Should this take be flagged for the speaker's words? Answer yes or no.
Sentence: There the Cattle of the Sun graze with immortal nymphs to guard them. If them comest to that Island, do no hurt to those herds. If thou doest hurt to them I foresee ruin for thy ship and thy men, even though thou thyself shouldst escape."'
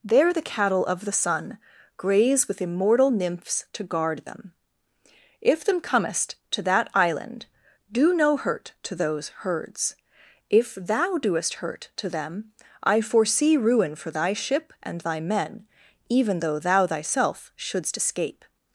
no